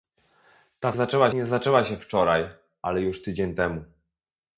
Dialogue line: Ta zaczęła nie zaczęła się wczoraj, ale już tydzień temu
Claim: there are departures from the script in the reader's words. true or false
false